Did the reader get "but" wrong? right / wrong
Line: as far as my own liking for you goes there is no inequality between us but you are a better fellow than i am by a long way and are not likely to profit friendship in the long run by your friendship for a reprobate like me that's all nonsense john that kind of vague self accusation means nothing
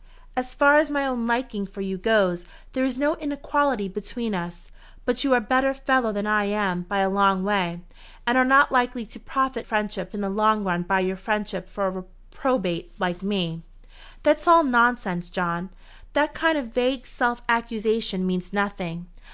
right